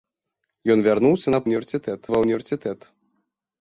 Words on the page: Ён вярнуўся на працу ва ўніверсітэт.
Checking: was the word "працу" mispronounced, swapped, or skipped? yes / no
yes